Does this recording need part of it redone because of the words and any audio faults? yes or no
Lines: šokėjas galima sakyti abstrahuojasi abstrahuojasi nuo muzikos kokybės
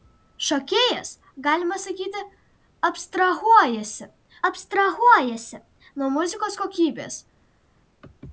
no